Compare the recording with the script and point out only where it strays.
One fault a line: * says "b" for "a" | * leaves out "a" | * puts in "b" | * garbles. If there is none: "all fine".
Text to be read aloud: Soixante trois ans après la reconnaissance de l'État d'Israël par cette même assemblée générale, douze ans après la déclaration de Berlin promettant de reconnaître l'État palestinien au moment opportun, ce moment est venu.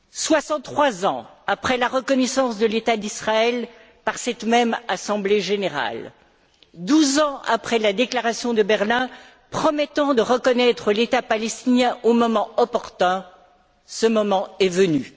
all fine